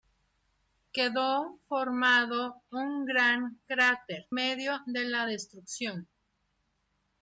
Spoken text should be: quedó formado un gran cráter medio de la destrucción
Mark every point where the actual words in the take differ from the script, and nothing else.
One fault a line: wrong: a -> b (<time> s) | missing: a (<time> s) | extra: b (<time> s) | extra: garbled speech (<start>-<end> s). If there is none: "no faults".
no faults